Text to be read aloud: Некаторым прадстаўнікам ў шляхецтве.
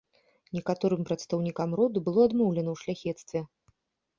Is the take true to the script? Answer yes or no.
no